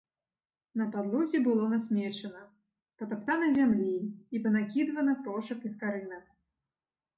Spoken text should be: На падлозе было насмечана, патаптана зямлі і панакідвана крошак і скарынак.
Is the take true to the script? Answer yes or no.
yes